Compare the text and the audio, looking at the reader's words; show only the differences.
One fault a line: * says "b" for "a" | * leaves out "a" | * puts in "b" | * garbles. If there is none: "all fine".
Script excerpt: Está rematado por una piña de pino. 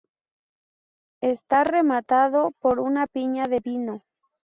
all fine